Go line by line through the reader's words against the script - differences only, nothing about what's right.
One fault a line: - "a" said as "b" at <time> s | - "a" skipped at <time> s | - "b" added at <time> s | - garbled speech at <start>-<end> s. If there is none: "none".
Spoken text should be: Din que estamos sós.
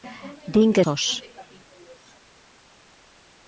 - "estamos" skipped at 0.8 s